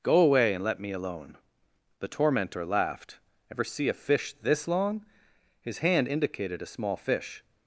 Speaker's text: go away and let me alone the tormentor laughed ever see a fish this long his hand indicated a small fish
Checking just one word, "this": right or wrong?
right